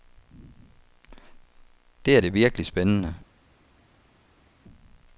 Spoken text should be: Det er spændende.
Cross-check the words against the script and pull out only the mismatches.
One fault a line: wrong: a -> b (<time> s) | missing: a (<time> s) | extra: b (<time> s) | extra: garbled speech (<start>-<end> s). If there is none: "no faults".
extra: det virkelig (2.2 s)